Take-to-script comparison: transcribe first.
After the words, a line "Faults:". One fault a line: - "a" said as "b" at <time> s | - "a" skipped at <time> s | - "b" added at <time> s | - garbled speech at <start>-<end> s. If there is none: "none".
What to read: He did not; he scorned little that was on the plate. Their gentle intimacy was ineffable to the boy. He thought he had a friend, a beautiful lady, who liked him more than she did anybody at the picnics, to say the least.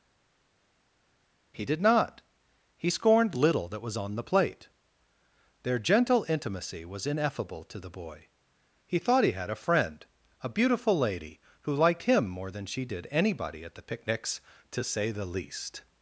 He did not; he scorned little that was on the plate. Their gentle intimacy was ineffable to the boy. He thought he had a friend, a beautiful lady, who liked him more than she did anybody at the picnics, to say the least.
Faults:
none